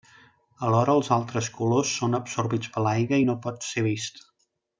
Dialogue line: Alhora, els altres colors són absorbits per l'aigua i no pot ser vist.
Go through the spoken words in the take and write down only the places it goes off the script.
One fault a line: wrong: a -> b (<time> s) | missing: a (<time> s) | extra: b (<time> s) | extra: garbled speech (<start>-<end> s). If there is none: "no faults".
no faults